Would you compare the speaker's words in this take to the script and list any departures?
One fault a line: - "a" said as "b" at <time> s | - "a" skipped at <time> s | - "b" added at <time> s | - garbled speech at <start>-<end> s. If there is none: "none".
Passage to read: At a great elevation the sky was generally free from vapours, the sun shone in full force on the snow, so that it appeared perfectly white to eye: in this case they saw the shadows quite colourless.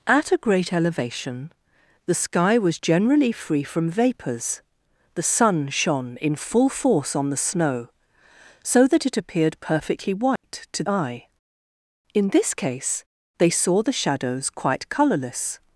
none